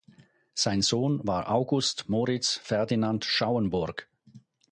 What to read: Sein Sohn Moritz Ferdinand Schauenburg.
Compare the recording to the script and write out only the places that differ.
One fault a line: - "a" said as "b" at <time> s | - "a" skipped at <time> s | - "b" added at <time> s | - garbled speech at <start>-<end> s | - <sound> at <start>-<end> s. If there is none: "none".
- "war August" added at 1.3 s